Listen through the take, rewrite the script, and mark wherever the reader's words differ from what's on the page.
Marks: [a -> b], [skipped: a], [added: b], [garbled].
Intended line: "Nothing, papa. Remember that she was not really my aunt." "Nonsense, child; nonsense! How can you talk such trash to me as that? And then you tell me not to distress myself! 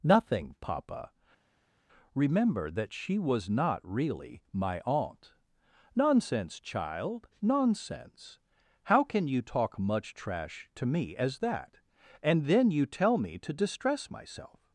"Nothing, papa. Remember that she was not really my aunt." "Nonsense, child; nonsense! How can you talk [such -> much] trash to me as that? And then you tell me [skipped: not] to distress myself!